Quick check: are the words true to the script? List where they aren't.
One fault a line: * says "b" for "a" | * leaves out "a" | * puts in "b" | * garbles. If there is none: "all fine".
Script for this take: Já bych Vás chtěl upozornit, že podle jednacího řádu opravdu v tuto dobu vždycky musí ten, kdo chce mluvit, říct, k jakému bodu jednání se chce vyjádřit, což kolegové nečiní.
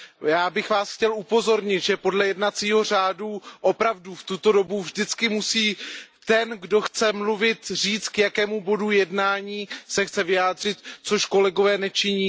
all fine